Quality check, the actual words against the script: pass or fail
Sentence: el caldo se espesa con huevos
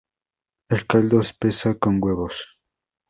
fail